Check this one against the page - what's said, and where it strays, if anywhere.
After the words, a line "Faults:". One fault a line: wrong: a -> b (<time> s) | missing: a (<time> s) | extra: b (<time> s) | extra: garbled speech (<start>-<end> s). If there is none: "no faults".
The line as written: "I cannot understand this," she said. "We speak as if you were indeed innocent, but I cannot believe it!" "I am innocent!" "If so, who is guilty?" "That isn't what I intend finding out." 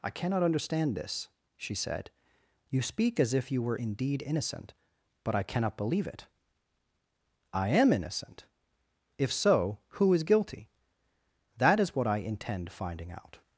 "I cannot understand this," she said. "You speak as if you were indeed innocent, but I cannot believe it!" "I am innocent!" "If so, who is guilty?" "That is what I intend finding out."
Faults:
wrong: We -> You (2.7 s)
wrong: isn't -> is (11.8 s)